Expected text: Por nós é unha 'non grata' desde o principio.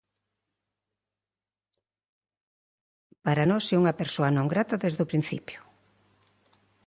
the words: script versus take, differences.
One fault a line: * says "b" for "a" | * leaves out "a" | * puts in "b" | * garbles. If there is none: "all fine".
* says "Para" for "Por"
* puts in "persoa"